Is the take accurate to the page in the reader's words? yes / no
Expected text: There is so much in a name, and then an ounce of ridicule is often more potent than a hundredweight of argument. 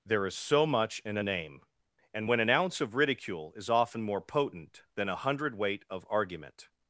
no